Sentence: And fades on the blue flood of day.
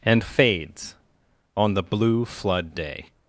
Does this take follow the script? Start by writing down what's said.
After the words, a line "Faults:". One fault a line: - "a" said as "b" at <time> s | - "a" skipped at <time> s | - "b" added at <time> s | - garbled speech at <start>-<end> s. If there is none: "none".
And fades on the blue flood day.
Faults:
- "of" skipped at 2.7 s